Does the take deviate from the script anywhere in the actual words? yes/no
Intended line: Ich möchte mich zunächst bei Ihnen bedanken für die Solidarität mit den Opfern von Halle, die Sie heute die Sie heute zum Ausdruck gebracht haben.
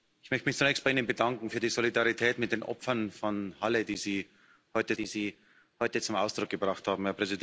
no